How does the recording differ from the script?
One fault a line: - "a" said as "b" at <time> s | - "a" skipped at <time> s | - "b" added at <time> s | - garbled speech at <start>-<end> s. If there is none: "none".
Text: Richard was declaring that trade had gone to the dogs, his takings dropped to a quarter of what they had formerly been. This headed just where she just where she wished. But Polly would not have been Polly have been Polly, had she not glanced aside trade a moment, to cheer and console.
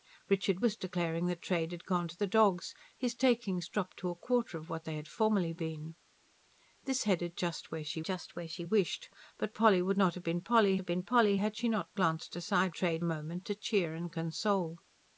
none